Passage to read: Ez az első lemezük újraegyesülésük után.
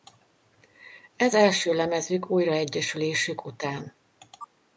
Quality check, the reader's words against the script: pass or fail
fail